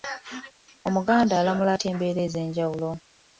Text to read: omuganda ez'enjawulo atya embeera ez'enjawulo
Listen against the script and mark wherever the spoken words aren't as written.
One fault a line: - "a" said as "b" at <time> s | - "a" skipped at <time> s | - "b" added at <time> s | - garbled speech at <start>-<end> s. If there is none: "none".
- "ez'enjawulo" said as "alamula" at 1.4 s